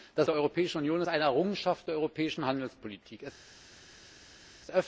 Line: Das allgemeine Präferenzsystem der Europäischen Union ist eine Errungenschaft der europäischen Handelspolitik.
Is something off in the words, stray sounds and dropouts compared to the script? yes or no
yes